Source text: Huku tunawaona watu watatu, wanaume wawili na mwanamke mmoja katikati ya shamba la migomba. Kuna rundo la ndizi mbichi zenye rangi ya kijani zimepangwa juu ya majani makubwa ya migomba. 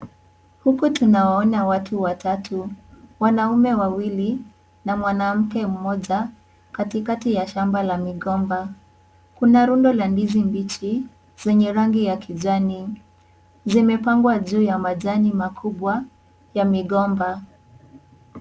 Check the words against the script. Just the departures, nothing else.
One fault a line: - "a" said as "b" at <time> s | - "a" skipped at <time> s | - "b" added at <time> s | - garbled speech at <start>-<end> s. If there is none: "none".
none